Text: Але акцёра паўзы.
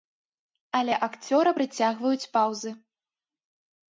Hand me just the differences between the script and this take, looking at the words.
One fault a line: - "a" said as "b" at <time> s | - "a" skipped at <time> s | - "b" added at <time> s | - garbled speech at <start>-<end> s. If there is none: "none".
- "прыцягваюць" added at 1.5 s